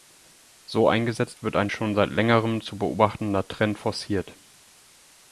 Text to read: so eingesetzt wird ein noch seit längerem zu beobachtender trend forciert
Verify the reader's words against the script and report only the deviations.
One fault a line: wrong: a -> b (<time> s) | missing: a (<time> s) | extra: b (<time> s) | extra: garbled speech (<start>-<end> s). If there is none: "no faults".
wrong: noch -> schon (1.7 s)